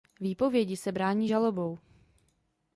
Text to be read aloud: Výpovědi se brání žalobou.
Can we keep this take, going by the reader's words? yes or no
yes